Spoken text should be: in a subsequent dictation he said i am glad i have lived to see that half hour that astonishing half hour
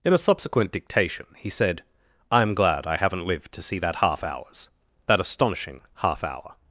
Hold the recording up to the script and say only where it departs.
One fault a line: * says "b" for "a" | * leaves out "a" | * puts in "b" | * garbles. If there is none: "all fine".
* says "haven't" for "have"
* says "hours" for "hour"